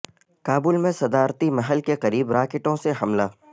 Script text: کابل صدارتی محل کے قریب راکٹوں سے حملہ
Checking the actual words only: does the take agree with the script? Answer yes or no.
no